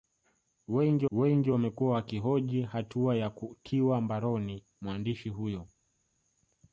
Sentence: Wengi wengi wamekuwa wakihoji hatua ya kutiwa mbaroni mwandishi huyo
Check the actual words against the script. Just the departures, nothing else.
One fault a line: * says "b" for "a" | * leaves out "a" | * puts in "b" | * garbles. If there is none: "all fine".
all fine